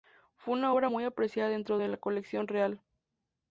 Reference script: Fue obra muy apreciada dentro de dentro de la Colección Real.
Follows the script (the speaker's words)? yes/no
no